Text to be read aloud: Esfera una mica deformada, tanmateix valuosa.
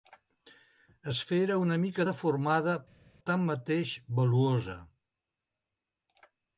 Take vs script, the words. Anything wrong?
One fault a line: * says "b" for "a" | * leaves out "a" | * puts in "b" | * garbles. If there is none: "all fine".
all fine